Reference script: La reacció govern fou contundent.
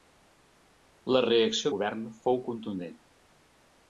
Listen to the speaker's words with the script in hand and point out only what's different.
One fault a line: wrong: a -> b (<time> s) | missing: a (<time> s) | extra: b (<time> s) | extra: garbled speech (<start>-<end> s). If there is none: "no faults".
no faults